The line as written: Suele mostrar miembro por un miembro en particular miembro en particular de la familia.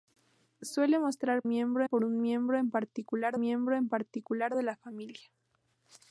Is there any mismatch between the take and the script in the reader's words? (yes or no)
no